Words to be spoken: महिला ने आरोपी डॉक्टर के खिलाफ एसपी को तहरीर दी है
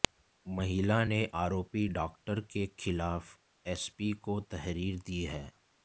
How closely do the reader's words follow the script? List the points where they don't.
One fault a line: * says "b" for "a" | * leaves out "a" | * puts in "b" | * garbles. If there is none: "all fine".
all fine